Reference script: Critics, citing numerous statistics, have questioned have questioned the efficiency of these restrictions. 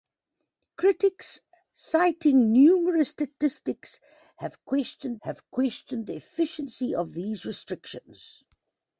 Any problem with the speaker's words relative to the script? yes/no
no